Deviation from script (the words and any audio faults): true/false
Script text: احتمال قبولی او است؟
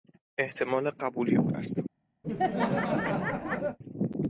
true